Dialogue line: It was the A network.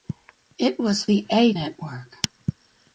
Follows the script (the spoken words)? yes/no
yes